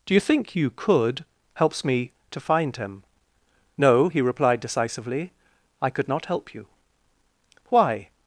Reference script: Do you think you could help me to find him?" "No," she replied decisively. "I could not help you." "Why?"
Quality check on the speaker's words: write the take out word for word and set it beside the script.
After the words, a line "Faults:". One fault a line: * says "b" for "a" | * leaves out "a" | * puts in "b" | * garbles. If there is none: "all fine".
Do you think you could helps me to find him?" "No," he replied decisively. "I could not help you." "Why?"
Faults:
* says "helps" for "help"
* says "he" for "she"